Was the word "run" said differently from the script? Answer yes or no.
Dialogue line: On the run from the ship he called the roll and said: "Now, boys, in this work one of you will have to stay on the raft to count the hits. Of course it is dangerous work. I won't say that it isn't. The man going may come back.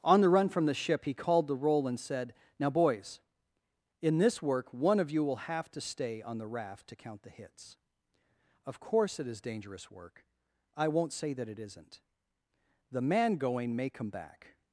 no